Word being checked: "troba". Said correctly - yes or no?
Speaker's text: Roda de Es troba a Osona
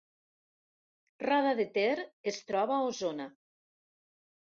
yes